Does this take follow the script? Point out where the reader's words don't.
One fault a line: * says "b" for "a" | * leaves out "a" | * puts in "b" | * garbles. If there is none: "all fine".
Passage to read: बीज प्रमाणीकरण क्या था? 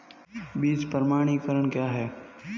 * says "है" for "था"